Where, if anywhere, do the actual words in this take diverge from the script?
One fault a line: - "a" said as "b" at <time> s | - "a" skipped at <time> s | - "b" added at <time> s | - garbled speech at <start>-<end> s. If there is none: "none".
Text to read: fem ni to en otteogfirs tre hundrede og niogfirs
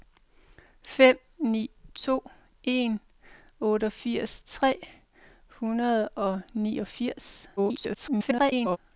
- garbled speech at 7.6-8.8 s